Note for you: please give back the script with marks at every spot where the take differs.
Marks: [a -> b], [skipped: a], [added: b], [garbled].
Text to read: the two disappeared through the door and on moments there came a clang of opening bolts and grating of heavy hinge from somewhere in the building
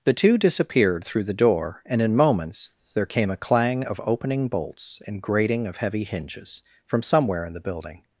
the two disappeared through the door and [on -> in] moments there came a clang of opening bolts and grating of heavy [hinge -> hinges] from somewhere in the building